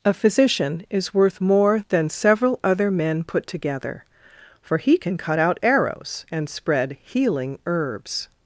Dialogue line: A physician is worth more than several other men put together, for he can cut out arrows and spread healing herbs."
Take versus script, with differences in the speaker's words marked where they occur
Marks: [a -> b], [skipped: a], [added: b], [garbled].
A physician is worth more than several other men put together, for he can cut out arrows and spread healing herbs."